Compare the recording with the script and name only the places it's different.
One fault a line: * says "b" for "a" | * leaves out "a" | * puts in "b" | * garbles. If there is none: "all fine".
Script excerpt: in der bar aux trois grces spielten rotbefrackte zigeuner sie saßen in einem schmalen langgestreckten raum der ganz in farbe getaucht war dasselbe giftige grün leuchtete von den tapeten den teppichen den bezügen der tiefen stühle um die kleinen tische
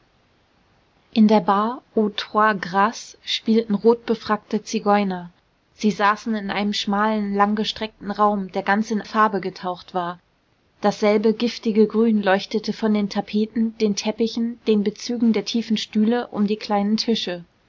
all fine